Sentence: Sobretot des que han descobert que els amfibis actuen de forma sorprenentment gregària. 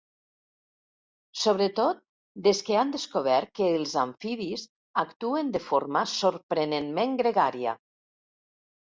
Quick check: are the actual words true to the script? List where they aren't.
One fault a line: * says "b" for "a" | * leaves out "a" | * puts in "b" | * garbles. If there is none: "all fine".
all fine